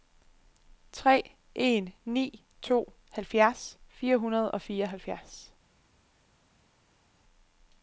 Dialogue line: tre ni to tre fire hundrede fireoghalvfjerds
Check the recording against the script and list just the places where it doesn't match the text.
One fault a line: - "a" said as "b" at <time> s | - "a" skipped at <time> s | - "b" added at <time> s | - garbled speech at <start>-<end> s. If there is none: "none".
- "en" added at 1.6 s
- "tre" said as "halvfjerds" at 3.1 s
- "og" added at 4.5 s